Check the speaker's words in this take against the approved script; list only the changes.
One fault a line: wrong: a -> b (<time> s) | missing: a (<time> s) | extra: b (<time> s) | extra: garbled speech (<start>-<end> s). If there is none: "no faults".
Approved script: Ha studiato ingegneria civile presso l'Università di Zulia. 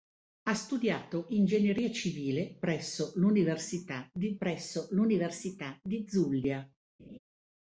extra: presso l'Università di (4.4 s)